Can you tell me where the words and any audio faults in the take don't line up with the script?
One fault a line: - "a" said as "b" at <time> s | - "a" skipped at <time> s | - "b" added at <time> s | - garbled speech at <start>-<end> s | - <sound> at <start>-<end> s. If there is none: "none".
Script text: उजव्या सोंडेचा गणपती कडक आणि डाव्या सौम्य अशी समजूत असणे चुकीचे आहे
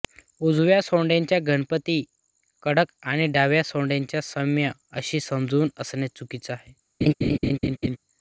- "सोंडेचा" added at 3.6 s
- laugh at 7.0-8.0 s